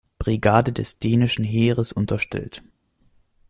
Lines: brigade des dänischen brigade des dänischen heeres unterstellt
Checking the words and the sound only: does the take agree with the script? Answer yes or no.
no